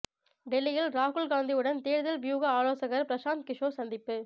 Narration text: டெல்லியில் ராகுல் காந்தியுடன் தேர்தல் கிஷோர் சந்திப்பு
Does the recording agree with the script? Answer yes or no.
no